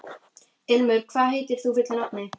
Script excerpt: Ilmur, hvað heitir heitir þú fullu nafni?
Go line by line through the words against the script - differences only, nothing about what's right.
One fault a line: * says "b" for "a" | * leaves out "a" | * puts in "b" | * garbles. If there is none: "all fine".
* leaves out "heitir"